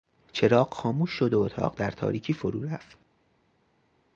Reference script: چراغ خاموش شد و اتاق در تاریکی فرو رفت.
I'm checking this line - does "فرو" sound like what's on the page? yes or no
yes